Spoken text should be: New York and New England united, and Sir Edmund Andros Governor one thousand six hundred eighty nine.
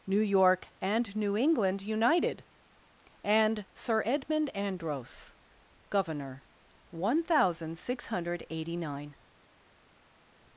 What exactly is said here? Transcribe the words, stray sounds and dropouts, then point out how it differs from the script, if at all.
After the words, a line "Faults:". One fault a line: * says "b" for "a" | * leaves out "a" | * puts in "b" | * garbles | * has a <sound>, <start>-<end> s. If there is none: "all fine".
New York and New England united, and Sir Edmund Andros Governor one thousand six hundred eighty nine.
Faults:
all fine